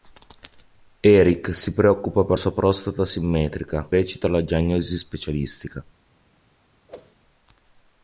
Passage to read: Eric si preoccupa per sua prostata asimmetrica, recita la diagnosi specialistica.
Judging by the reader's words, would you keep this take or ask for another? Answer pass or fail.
pass